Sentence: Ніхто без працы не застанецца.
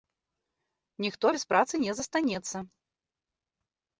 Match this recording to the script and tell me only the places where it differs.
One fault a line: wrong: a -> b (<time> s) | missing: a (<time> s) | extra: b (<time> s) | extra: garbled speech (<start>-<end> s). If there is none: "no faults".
no faults